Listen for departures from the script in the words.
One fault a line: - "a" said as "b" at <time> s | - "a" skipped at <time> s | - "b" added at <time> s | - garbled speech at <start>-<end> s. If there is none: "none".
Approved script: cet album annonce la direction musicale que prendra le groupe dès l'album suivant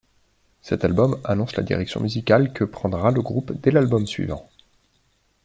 none